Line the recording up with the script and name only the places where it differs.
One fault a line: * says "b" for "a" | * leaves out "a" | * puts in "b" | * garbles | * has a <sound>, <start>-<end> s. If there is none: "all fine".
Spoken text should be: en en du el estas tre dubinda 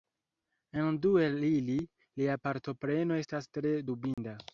* leaves out "en"
* puts in "ili lia partopreno"
* has a dropout, 4.1-4.2 s